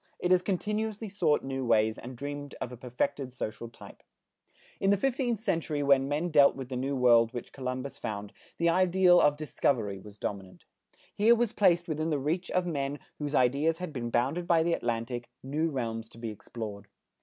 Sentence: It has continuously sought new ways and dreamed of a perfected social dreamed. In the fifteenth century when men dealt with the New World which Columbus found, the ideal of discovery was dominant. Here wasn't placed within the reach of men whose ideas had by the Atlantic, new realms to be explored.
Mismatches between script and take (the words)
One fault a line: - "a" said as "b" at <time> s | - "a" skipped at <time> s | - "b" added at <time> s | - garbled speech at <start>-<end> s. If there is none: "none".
- "dreamed" said as "type" at 3.7 s
- "wasn't" said as "was" at 11.4 s
- "been bounded" added at 13.9 s